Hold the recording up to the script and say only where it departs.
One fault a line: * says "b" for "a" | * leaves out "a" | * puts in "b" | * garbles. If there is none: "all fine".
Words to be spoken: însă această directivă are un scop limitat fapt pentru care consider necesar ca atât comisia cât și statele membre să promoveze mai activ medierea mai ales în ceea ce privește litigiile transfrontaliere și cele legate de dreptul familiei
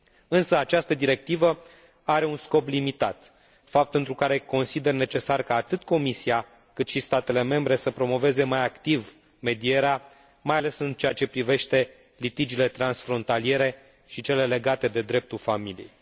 all fine